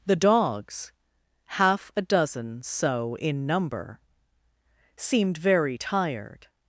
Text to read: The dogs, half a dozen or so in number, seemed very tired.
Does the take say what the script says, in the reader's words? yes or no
no